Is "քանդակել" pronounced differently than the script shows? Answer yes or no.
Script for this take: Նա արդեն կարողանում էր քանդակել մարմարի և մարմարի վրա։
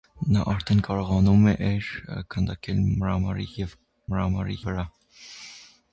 no